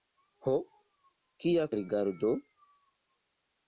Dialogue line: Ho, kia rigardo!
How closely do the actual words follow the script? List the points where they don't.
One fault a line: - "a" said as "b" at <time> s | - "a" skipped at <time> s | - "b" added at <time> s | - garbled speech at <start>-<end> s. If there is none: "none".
none